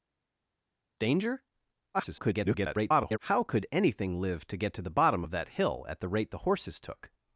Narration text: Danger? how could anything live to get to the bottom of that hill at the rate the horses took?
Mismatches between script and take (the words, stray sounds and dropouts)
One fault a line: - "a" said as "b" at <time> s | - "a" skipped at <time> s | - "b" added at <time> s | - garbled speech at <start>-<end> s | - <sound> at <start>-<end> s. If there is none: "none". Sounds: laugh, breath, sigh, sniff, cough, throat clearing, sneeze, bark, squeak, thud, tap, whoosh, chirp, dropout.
- garbled speech at 1.9-3.2 s